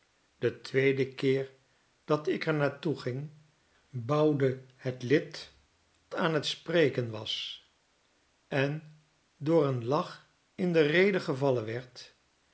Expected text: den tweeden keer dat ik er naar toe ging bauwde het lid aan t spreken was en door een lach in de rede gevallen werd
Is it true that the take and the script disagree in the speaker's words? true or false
false